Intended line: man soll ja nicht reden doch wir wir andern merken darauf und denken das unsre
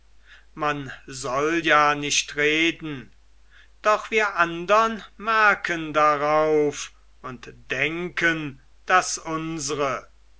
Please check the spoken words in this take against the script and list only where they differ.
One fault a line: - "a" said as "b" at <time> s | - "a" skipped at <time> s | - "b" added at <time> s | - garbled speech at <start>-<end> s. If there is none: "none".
- "wir" skipped at 4.3 s